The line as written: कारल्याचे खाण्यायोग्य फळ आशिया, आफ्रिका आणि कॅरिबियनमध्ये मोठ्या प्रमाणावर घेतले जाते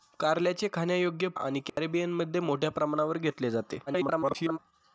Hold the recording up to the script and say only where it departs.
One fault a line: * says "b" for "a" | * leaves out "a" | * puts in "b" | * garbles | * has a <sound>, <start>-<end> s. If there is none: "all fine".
* leaves out "फळ आशिया आफ्रिका"
* has a dropout, 1.7-1.8 s
* garbles